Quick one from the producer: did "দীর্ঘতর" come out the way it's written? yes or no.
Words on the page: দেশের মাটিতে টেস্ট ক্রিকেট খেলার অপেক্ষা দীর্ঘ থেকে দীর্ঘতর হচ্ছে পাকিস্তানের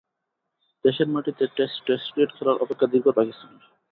no